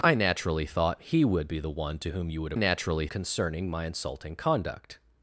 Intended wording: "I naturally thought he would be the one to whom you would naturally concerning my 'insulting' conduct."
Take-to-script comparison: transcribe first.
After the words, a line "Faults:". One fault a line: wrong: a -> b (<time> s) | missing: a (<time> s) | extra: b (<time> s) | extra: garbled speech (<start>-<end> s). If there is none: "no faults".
"I naturally thought he would be the one to whom you would naturally concerning my 'insulting' conduct."
Faults:
no faults